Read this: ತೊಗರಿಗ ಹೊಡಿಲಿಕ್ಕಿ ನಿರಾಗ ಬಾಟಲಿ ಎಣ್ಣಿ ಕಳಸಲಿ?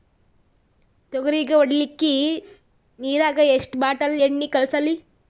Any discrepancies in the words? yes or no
yes